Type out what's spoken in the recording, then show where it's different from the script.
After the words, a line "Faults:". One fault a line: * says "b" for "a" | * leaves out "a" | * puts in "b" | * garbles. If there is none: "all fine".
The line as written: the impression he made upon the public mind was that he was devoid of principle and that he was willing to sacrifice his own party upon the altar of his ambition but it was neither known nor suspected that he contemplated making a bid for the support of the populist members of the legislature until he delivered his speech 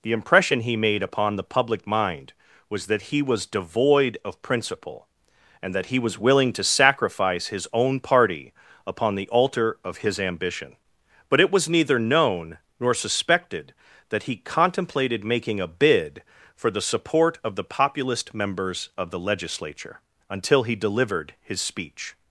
the impression he made upon the public mind was that he was devoid of principle and that he was willing to sacrifice his own party upon the altar of his ambition but it was neither known nor suspected that he contemplated making a bid for the support of the populist members of the legislature until he delivered his speech
Faults:
all fine